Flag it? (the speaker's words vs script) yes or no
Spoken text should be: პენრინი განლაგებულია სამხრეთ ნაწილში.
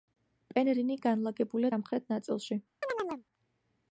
no